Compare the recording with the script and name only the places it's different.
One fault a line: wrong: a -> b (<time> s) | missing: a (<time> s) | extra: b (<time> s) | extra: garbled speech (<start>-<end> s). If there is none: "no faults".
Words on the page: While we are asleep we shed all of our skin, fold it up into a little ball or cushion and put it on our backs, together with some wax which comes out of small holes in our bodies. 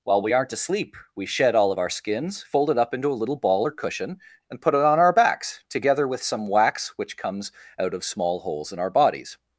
wrong: are -> aren't (0.3 s)
wrong: skin -> skins (1.9 s)